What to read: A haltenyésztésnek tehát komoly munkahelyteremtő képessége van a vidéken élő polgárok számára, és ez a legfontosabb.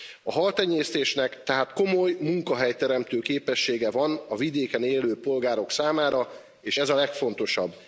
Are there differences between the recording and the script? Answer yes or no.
no